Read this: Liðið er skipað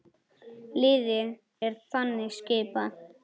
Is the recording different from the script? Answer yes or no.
yes